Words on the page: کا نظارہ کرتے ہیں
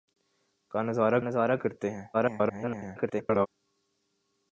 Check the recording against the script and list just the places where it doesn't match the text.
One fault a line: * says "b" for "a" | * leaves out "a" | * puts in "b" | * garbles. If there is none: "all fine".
* puts in "نظارہ"
* garbles